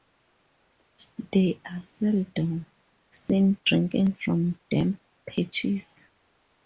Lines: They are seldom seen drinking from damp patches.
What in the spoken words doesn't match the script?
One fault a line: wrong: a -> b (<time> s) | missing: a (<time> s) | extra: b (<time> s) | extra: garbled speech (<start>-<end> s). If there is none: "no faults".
no faults